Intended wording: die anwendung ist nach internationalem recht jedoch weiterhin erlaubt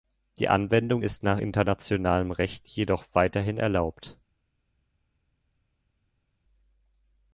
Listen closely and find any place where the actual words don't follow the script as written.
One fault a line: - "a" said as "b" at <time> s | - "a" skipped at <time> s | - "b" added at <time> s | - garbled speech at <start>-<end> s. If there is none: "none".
none